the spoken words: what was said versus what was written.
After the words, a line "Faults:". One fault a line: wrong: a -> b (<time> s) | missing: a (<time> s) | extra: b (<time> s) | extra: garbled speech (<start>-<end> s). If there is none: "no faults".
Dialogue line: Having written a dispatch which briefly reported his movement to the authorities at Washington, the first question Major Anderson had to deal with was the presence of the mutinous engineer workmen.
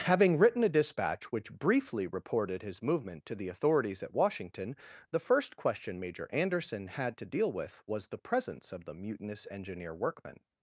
Having written a dispatch which briefly reported his movement to the authorities at Washington, the first question Major Anderson had to deal with was the presence of the mutinous engineer workmen.
Faults:
no faults